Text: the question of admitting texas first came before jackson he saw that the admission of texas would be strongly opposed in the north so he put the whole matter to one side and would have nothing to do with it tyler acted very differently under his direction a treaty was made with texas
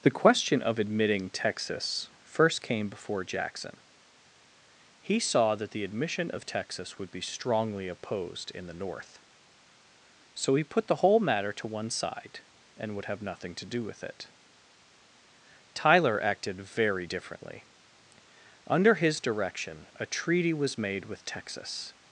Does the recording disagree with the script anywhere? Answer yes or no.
no